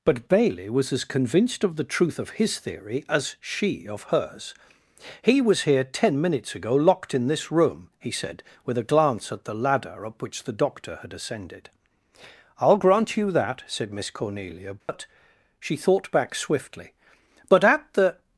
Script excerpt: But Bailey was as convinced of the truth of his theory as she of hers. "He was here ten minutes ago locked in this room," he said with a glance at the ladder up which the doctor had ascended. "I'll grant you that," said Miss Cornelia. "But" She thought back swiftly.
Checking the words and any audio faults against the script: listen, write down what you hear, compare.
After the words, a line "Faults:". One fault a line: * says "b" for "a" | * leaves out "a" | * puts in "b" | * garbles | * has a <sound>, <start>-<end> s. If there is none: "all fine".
But Bailey was as convinced of the truth of his theory as she of hers. "He was here ten minutes ago locked in this room," he said with a glance at the ladder up which the doctor had ascended. "I'll grant you that," said Miss Cornelia. "But" She thought back swiftly. "But at the
Faults:
* has a dropout, 14.8-14.9 s
* puts in "But at the"